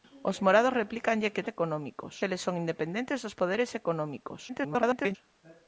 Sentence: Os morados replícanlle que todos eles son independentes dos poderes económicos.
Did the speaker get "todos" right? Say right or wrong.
wrong